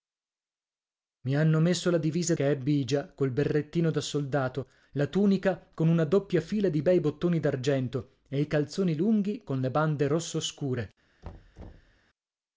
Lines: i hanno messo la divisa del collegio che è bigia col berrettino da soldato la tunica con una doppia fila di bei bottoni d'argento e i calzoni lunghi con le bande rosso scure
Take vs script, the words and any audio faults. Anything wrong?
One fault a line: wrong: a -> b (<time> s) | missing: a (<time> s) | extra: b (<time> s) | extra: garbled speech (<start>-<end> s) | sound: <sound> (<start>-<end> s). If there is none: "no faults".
missing: del collegio (2.3 s)
sound: thud (11.2-12.0 s)